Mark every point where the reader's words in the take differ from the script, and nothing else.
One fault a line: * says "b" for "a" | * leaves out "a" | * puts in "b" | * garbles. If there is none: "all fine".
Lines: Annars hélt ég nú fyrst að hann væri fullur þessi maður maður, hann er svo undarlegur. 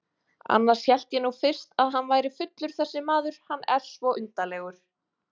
* leaves out "maður"